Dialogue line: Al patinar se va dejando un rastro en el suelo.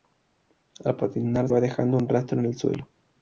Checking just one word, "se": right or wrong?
wrong